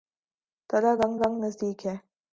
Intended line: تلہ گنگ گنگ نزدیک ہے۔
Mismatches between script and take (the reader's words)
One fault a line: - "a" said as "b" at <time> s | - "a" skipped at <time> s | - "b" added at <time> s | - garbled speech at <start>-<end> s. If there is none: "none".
none